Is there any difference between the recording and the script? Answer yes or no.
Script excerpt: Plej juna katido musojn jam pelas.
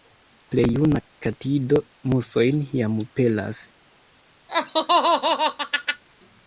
no